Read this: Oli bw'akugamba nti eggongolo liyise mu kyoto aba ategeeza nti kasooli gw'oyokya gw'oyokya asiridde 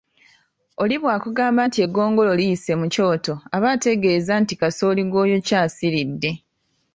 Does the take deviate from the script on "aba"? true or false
false